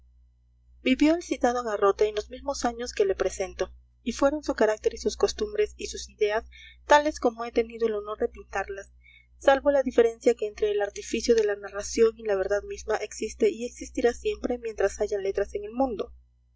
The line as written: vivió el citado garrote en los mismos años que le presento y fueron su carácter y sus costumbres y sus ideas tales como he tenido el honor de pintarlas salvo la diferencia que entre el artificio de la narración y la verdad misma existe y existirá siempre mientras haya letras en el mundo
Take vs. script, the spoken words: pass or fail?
pass